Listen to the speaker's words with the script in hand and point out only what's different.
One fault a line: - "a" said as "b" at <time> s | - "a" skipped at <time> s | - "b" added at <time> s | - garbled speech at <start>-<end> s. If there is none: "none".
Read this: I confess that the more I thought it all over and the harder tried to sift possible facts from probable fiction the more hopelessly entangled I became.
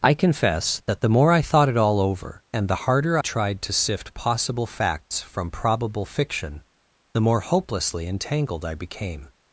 none